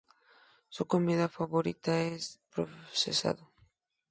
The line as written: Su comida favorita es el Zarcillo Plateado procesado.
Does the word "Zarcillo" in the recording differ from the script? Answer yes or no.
yes